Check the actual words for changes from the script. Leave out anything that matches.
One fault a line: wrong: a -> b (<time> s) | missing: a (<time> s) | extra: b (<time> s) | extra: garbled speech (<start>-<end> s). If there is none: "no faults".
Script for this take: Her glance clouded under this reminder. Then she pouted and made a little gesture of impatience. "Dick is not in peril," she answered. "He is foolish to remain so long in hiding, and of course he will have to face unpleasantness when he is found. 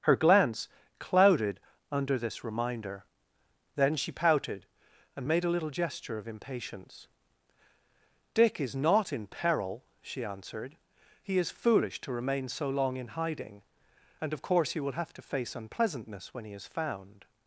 no faults